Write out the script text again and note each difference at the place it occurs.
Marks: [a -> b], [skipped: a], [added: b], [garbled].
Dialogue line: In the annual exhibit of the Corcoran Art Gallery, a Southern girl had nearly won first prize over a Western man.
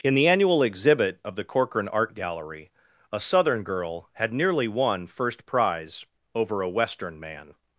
In the annual exhibit of the Corcoran Art Gallery, a Southern girl had nearly won first prize over a Western man.